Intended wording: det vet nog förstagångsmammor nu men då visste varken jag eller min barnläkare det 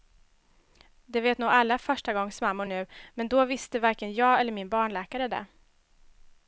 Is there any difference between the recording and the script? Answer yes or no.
yes